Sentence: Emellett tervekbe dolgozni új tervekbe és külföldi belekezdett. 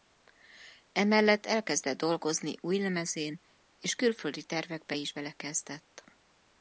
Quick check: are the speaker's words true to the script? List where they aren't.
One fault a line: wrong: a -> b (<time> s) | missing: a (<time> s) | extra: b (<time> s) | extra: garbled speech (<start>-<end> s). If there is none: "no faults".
wrong: tervekbe -> elkezdett (1.4 s)
wrong: tervekbe -> lemezén (2.8 s)
extra: tervekbe is (4.4 s)